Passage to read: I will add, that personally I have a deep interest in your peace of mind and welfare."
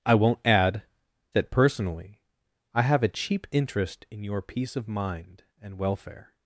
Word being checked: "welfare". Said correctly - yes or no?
yes